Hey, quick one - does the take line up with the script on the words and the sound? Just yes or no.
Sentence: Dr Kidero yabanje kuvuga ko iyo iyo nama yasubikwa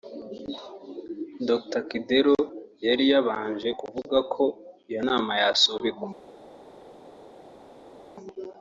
no